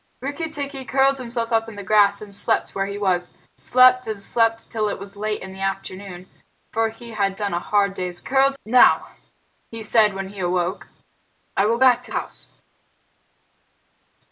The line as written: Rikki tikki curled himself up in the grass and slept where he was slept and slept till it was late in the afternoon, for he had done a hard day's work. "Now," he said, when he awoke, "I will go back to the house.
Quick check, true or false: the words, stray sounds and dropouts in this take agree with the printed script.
false